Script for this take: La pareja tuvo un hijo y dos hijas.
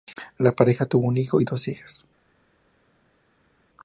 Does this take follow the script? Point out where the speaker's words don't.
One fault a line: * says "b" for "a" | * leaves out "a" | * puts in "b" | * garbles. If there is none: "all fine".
all fine